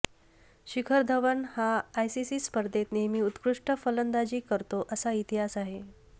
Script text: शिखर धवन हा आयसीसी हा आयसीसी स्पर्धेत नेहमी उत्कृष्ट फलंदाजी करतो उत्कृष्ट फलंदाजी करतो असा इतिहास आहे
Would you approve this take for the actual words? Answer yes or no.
no